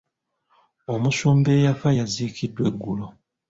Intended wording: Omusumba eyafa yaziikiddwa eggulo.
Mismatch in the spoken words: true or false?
false